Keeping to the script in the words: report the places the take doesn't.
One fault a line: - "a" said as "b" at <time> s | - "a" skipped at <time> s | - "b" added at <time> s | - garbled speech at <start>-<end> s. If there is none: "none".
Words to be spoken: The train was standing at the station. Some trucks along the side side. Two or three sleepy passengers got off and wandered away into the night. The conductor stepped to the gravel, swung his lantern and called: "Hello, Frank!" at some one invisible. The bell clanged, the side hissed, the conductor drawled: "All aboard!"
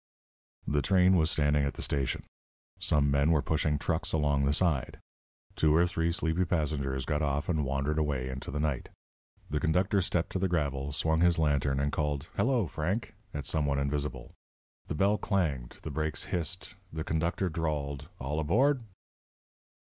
- "men were pushing" added at 3.1 s
- "side" skipped at 5.0 s
- "side" said as "brakes" at 15.9 s